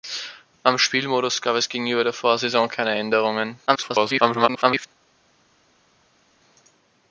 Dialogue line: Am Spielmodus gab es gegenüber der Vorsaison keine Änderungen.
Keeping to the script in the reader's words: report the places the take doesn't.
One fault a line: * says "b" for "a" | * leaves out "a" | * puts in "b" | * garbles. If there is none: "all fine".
* garbles